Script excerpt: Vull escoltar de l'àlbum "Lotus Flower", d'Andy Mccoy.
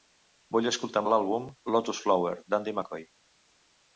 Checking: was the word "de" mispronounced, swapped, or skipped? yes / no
no